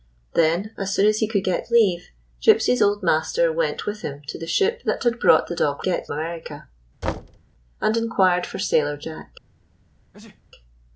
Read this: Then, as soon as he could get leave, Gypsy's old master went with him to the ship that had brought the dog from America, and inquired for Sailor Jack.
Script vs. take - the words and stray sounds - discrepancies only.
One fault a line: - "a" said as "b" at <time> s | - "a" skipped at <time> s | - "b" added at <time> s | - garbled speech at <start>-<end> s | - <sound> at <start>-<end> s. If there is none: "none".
- "from" said as "get" at 5.8 s
- thud at 7.0-7.4 s
- sneeze at 10.1-10.4 s